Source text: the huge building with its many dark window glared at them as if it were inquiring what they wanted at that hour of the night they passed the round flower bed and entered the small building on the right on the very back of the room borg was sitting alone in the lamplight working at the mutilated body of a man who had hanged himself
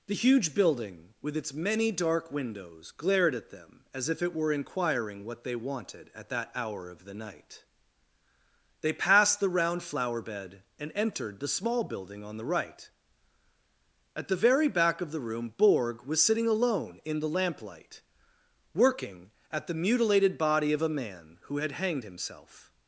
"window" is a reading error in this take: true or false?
true